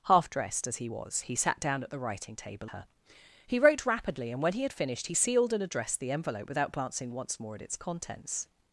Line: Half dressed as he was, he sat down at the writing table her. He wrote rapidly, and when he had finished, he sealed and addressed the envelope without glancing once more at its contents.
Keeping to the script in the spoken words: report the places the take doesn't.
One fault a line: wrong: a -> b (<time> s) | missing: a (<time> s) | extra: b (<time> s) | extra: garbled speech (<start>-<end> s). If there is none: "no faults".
no faults